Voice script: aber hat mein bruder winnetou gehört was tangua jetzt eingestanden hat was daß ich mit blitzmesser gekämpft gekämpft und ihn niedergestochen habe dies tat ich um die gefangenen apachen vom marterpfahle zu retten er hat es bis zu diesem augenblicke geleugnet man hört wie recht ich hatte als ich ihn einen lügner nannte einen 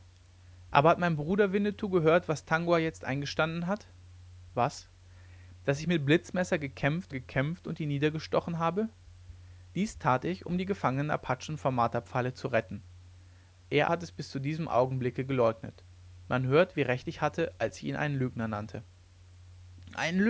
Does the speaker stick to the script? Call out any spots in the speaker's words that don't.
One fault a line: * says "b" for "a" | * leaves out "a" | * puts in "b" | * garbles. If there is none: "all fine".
all fine